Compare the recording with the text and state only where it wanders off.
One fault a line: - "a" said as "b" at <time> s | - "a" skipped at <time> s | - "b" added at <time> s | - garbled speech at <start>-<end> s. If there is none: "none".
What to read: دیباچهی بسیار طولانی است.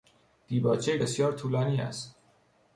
none